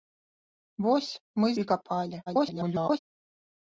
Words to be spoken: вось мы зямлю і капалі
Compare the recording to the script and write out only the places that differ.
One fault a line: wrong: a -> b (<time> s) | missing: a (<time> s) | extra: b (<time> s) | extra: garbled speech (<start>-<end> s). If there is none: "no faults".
missing: зямлю (1.5 s)
extra: garbled speech (2.3-3.0 s)